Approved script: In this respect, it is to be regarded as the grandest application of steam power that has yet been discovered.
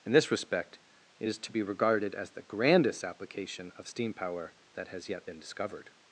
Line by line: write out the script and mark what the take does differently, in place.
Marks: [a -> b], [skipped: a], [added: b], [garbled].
In this respect, it is to be regarded as the grandest application of steam power that has yet been discovered.